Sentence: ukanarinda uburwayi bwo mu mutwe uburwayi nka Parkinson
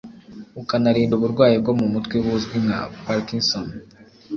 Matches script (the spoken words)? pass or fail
fail